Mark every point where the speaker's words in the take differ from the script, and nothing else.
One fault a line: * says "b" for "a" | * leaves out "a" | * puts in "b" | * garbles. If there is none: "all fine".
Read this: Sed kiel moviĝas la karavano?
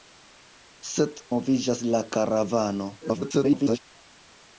* leaves out "kiel"
* garbles